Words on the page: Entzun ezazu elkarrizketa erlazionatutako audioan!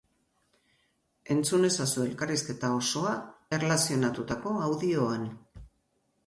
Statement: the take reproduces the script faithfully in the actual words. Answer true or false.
false